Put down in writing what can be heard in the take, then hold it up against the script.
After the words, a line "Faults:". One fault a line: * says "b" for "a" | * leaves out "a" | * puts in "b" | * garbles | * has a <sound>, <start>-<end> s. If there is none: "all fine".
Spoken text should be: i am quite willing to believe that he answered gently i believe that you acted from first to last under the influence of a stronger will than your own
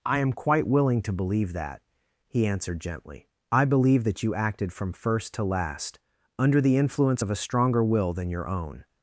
i am quite willing to believe that he answered gently i believe that you acted from first to last under the influence of a stronger will than your own
Faults:
all fine